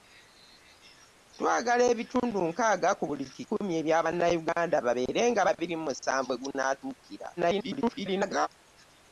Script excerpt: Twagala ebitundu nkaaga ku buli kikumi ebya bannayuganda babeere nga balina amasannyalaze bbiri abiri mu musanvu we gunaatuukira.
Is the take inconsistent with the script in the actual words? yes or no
yes